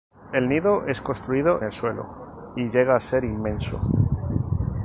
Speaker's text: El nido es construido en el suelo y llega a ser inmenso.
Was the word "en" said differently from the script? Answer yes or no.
yes